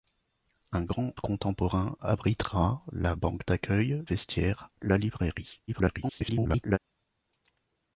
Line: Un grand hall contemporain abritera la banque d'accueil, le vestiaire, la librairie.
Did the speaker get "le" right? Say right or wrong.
wrong